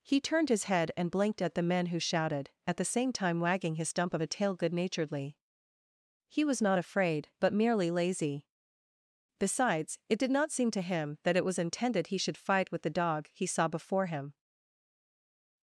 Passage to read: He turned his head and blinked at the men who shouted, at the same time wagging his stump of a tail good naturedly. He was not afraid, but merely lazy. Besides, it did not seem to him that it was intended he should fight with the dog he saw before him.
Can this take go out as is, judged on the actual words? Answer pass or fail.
pass